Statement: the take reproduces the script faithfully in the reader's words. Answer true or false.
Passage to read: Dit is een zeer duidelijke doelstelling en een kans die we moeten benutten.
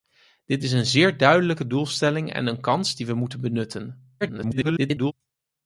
false